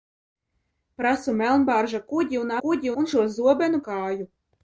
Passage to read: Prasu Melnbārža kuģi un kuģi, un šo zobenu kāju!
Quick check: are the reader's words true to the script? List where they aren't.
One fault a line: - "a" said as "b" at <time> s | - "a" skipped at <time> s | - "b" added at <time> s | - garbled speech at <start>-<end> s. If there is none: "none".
none